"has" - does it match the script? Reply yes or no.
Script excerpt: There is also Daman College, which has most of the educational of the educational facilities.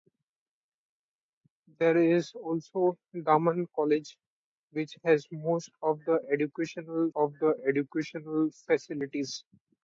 yes